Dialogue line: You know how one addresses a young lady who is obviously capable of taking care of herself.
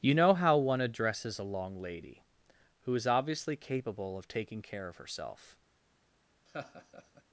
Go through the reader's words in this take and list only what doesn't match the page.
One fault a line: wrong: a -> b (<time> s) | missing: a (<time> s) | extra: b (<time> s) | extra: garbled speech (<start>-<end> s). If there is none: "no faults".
wrong: young -> long (1.4 s)